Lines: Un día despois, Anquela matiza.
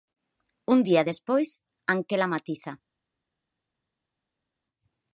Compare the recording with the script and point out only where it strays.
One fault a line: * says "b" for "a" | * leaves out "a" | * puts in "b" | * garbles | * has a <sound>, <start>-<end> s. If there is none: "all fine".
all fine